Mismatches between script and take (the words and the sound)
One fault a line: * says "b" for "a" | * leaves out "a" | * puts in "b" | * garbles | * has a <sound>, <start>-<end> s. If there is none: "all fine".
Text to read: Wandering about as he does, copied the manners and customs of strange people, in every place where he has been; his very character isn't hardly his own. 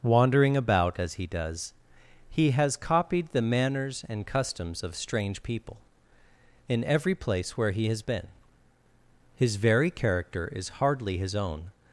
* puts in "he has"
* says "is" for "isn't"